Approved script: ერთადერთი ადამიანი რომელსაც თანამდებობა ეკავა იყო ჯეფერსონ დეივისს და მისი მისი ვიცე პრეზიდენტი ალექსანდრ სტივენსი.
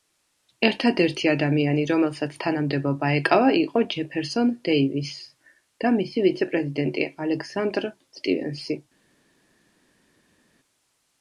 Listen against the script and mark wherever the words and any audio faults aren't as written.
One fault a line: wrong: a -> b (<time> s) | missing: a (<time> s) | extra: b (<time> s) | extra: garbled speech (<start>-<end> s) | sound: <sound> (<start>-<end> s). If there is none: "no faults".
missing: მისი (6.3 s)